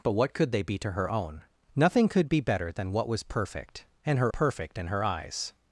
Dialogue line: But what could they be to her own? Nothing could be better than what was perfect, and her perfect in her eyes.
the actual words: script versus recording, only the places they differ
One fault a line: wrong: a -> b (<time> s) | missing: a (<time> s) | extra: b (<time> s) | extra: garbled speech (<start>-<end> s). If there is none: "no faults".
no faults